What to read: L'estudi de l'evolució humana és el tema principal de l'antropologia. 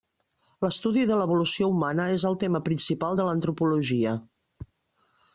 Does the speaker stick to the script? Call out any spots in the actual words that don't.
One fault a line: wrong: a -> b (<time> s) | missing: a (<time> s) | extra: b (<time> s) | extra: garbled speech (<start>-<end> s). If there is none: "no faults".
no faults